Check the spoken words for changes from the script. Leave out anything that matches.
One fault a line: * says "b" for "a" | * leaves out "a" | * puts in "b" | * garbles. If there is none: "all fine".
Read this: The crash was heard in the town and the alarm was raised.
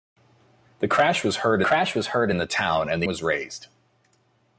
* puts in "crash was heard"
* leaves out "alarm"